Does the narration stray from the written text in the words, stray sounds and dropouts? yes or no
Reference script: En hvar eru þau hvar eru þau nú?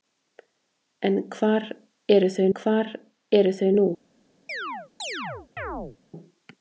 yes